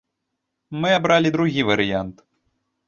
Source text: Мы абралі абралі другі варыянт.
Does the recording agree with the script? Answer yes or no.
no